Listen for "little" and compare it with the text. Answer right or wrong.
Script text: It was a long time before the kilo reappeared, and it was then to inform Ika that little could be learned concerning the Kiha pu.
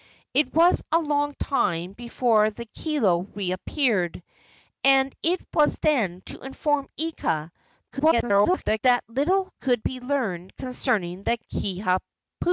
right